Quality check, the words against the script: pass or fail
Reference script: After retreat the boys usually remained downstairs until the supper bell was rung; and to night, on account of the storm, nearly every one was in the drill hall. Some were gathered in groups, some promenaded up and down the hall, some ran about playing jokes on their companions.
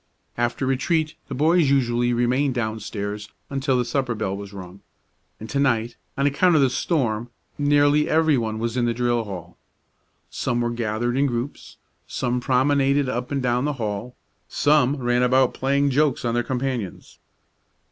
pass